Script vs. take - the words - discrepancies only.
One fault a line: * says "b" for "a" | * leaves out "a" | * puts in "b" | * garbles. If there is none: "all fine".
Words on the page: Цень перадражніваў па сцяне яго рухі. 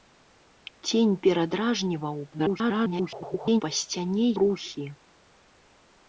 * garbles
* leaves out "яго"